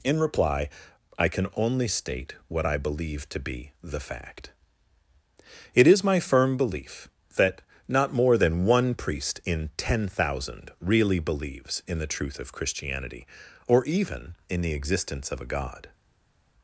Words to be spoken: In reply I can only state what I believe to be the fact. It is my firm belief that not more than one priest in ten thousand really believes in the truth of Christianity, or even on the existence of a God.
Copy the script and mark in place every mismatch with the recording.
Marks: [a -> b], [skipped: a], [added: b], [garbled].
In reply I can only state what I believe to be the fact. It is my firm belief that not more than one priest in ten thousand really believes in the truth of Christianity, or even [on -> in] the existence of a God.